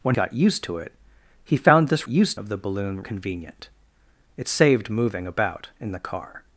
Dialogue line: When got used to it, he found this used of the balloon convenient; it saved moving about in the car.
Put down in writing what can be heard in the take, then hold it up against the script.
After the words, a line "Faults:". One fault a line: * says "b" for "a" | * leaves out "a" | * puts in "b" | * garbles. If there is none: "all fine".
When got used to it, he found this used of the balloon convenient; it saved moving about in the car.
Faults:
all fine